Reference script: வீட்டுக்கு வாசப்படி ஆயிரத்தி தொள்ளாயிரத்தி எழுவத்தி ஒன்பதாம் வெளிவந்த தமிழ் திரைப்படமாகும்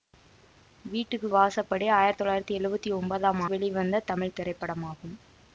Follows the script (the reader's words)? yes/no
yes